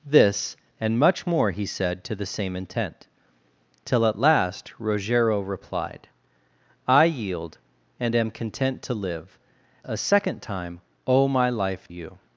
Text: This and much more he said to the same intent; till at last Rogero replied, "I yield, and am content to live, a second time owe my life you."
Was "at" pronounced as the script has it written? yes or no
yes